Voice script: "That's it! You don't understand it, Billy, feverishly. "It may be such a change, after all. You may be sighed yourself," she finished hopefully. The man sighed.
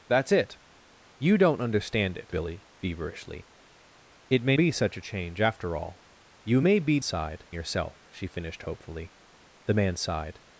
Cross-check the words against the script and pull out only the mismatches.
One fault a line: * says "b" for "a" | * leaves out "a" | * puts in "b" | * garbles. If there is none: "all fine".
all fine